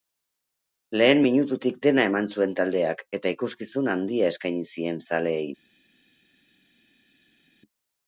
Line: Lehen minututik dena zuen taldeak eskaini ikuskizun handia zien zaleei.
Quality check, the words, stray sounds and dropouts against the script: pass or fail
fail